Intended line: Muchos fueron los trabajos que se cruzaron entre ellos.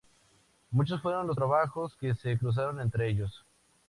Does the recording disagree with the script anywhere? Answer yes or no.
no